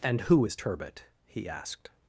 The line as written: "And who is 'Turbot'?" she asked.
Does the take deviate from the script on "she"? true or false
true